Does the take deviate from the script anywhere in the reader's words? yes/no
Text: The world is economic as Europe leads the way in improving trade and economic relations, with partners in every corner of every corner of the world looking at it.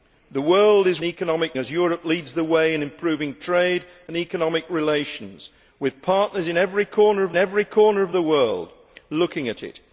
no